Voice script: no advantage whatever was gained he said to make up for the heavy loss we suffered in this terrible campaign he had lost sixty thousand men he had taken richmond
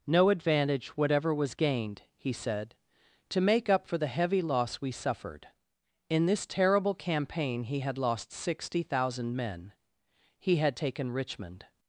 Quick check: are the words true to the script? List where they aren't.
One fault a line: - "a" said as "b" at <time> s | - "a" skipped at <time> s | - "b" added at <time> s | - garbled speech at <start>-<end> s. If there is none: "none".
none